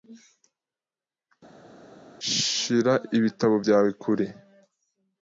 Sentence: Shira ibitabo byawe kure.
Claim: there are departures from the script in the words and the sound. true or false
false